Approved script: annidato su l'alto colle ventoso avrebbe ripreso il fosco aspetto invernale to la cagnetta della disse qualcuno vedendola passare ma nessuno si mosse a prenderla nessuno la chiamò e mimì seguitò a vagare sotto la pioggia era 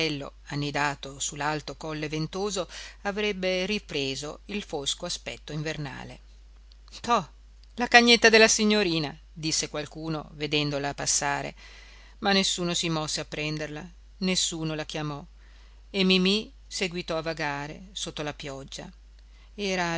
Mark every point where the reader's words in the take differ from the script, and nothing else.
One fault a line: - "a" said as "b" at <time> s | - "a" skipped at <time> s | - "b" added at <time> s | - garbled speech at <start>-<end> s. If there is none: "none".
- "signorina" added at 8.5 s